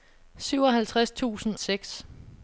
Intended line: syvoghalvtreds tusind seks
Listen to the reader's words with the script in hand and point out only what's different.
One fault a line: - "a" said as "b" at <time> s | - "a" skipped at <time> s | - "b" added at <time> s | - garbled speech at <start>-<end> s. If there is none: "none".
none